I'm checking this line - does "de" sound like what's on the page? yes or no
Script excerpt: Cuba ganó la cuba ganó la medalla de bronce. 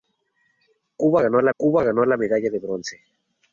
yes